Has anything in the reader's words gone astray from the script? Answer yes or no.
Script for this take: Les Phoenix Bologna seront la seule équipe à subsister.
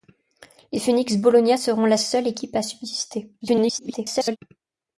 yes